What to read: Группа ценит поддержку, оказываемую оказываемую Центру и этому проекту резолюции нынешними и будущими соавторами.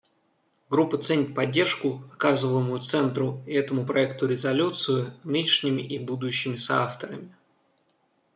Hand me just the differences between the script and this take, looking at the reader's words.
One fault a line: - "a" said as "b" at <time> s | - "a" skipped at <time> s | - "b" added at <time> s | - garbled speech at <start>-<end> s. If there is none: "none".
- "оказываемую" skipped at 2.8 s